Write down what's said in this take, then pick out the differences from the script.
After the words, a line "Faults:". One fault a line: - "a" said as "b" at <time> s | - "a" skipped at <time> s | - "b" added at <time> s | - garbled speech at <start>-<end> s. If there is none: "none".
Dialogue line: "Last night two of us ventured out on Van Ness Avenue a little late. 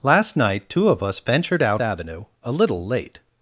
"Last night two of us ventured out Avenue a little late.
Faults:
- "on Van Ness" skipped at 1.8 s